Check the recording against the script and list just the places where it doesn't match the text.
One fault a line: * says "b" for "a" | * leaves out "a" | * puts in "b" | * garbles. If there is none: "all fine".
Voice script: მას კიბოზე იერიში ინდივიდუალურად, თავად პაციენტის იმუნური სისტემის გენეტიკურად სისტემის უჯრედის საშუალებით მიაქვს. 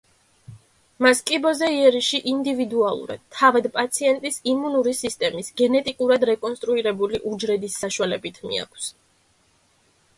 * says "რეკონსტრუირებული" for "სისტემის"